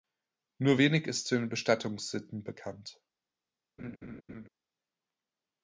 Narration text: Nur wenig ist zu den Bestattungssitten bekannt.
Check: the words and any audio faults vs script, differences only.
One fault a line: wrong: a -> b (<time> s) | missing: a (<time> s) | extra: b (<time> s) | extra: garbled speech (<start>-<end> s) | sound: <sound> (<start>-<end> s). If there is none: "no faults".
sound: laugh (3.8-4.5 s)